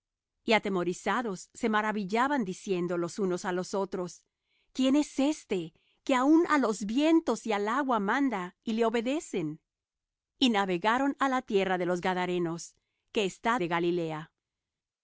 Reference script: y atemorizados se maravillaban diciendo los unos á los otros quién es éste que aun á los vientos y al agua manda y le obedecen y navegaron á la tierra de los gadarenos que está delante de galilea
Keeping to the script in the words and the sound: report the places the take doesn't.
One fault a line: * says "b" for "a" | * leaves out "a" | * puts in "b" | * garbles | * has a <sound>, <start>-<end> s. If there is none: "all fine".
* leaves out "delante"